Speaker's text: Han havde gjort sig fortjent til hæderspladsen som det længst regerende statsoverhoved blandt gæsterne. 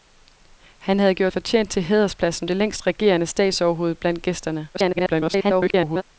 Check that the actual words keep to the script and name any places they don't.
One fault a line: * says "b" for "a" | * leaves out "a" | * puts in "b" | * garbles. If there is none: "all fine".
* leaves out "sig"
* leaves out "som"
* garbles